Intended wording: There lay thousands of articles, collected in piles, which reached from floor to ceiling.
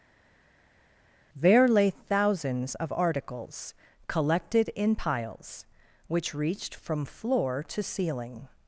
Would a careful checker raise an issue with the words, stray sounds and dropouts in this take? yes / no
no